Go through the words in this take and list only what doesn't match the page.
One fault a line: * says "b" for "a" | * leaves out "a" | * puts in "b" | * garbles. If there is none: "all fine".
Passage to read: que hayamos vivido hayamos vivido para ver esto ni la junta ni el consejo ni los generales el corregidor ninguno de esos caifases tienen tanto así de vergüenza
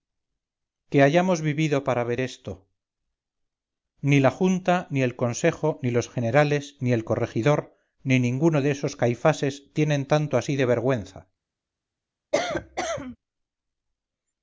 * leaves out "hayamos vivido"
* puts in "ni"
* puts in "ni"